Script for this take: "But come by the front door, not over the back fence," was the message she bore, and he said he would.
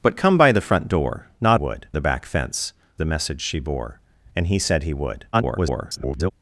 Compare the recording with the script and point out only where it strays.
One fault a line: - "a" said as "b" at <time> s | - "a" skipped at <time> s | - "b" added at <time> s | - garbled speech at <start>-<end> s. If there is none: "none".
- "over" said as "would" at 1.5 s
- "was" skipped at 2.7 s
- garbled speech at 5.3-6.3 s